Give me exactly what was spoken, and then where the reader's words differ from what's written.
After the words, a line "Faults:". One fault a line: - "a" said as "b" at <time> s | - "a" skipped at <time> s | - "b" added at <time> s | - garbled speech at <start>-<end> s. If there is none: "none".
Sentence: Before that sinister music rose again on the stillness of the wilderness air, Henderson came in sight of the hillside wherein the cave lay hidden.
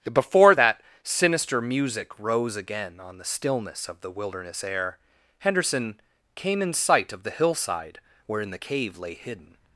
Before that sinister music rose again on the stillness of the wilderness air, Henderson came in sight of the hillside wherein the cave lay hidden.
Faults:
none